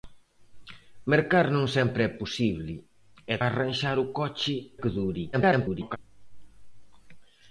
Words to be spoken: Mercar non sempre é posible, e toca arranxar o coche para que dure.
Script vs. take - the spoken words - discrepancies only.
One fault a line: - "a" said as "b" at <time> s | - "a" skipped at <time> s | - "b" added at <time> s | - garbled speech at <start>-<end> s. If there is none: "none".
- "toca" skipped at 3.4 s
- "para" skipped at 4.6 s
- garbled speech at 5.3-6.0 s